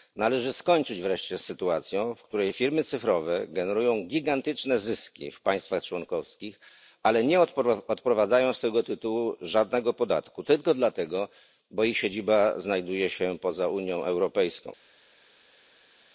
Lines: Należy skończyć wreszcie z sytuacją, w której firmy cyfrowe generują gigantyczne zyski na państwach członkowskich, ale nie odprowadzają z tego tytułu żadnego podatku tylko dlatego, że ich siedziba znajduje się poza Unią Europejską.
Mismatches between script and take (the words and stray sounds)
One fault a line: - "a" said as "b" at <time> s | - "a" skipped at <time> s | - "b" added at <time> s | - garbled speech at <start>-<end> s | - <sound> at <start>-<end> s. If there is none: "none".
- "na" said as "w" at 5.3 s